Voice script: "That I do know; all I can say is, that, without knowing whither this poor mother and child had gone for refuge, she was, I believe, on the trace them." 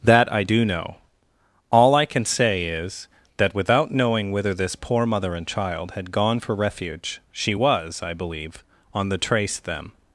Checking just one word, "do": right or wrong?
right